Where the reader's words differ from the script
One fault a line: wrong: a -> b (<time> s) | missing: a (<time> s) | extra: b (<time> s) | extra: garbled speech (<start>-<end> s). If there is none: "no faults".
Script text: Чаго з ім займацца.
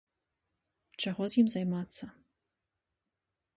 no faults